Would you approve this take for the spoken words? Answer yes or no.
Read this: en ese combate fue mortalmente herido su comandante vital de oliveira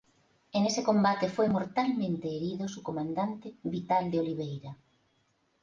yes